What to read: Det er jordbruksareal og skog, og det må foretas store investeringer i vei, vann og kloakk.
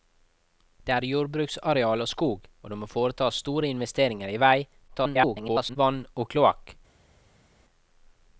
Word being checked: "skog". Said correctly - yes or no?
yes